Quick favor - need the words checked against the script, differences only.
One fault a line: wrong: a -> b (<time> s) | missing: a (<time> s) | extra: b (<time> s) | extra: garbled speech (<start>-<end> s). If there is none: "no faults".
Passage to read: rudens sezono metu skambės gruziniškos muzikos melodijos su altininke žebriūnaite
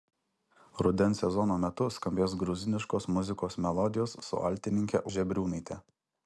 no faults